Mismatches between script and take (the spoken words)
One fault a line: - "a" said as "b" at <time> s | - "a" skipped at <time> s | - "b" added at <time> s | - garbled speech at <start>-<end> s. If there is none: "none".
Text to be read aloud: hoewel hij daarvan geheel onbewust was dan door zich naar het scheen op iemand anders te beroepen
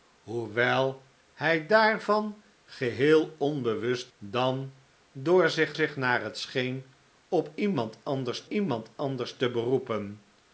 - "was" skipped at 4.1 s
- "zich" added at 5.7 s
- "iemand anders" added at 8.5 s